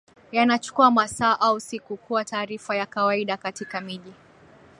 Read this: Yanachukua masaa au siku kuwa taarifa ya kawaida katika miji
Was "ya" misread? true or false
false